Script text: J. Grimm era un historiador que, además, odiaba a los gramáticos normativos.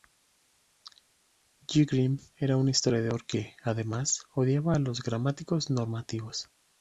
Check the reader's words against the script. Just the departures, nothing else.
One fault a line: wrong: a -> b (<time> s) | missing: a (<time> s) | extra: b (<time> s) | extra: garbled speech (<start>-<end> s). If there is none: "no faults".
no faults